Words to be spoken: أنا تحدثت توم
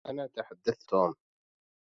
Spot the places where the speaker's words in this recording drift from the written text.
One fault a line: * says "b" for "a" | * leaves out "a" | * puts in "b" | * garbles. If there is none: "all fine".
all fine